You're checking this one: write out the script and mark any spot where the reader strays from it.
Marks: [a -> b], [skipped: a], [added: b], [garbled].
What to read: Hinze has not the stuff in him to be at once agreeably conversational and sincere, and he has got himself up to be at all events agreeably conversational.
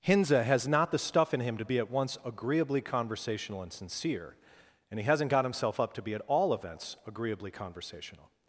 Hinze has not the stuff in him to be at once agreeably conversational and sincere, and he [has -> hasn't] got himself up to be at all events agreeably conversational.